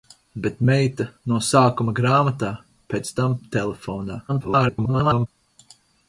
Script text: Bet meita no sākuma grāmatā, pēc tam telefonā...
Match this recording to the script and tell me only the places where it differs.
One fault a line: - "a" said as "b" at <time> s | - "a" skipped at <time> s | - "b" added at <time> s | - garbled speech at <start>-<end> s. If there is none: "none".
- garbled speech at 4.3-5.3 s